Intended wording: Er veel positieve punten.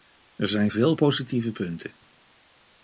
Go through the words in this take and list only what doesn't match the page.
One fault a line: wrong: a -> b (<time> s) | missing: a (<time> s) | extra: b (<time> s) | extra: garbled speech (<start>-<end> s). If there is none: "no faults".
extra: zijn (0.5 s)